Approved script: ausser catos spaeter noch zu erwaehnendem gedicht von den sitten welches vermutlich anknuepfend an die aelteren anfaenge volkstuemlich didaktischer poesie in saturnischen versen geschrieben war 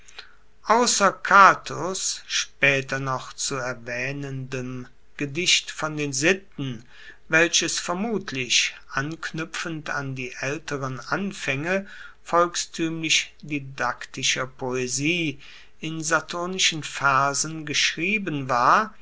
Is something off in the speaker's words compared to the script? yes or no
no